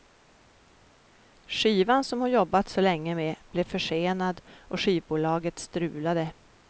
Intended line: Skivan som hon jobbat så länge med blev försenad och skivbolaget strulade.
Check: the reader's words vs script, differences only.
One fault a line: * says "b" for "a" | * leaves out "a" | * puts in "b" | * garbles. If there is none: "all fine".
all fine